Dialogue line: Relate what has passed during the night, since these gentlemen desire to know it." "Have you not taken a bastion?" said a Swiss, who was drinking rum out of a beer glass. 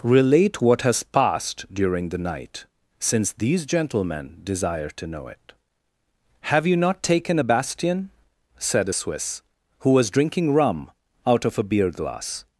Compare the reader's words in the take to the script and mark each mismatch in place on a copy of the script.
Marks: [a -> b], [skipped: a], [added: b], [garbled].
Relate what has passed during the night, since these gentlemen desire to know it." "Have you not taken a bastion?" said a Swiss, who was drinking rum out of a beer glass.